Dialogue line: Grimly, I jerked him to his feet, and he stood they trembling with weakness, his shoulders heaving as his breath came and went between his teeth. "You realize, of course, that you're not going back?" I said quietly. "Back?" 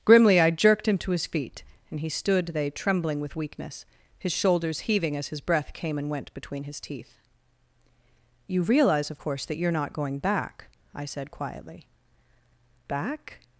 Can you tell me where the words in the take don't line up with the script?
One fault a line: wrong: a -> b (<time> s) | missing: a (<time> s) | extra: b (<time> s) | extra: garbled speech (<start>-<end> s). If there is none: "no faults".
no faults